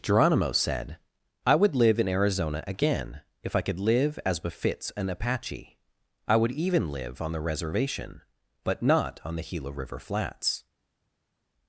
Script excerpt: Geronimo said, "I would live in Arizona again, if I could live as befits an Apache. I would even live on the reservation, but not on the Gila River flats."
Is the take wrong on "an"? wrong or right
right